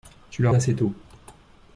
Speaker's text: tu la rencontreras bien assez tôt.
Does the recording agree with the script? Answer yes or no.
no